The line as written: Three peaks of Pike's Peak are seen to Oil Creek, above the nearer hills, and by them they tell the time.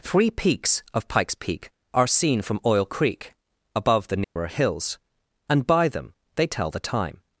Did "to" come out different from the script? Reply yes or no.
yes